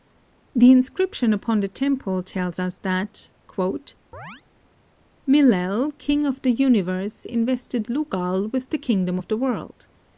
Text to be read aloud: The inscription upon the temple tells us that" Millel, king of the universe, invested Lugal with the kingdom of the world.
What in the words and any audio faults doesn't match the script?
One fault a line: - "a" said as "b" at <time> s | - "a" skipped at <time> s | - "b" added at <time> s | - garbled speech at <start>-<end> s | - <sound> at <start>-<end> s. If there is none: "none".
- chirp at 4.1-4.4 s